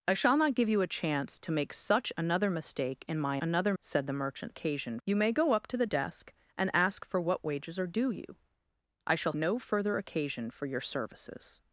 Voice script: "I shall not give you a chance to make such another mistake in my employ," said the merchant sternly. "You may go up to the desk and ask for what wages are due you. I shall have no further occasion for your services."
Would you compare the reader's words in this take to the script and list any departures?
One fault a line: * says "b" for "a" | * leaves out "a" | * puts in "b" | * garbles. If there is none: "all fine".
* says "another" for "employ"
* says "occasion" for "sternly"
* leaves out "have"